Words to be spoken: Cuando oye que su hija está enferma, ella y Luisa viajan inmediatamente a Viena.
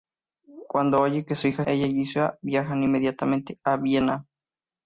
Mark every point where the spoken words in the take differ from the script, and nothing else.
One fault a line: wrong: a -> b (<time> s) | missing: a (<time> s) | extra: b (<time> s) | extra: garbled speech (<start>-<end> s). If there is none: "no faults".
missing: está enferma (1.6 s)